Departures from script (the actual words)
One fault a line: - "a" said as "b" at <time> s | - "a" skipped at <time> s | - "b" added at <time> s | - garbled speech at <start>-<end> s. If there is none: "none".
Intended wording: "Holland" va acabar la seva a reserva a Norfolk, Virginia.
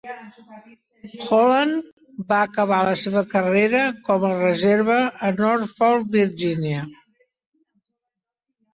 - "carrera com" added at 3.4 s